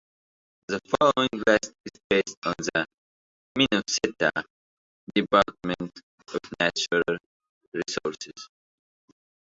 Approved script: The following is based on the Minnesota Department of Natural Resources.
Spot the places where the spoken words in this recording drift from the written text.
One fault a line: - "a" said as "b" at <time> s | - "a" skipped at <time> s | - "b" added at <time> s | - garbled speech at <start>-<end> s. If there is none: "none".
- "list" added at 1.4 s